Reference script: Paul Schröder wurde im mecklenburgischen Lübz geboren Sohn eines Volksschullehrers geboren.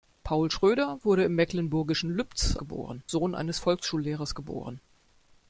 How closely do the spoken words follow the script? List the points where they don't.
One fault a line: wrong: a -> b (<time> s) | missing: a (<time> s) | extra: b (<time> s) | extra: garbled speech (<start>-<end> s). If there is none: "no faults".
no faults